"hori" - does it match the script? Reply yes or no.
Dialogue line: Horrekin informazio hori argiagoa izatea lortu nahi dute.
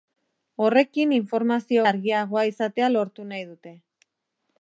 no